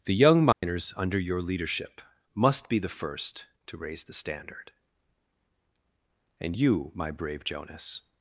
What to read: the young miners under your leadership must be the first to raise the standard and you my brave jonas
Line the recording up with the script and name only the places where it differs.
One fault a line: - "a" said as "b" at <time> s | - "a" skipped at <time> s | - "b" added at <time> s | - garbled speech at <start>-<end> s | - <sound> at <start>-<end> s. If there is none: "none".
- dropout at 0.5-0.6 s